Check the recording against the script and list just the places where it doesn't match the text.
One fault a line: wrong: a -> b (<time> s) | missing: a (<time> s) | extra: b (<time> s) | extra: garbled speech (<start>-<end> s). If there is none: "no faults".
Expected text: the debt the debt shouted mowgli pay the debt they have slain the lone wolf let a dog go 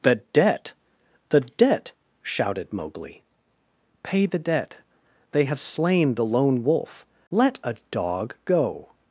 no faults